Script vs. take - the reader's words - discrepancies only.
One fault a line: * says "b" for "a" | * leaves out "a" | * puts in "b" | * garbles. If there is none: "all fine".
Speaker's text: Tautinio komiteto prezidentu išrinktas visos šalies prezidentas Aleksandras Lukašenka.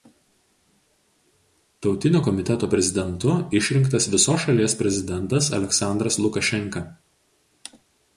all fine